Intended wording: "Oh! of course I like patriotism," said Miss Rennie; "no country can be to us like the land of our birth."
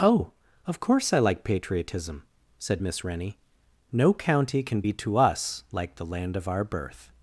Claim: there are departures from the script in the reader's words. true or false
true